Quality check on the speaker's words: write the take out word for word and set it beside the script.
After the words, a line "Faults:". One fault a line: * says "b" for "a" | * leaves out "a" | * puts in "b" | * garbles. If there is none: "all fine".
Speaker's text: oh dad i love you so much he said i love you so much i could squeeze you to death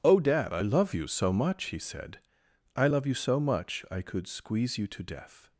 oh dad i love you so much he said i love you so much i could squeeze you to death
Faults:
all fine